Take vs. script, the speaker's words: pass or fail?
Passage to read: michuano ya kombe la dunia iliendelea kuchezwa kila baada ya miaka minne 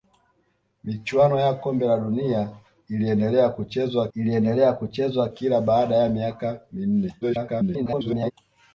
fail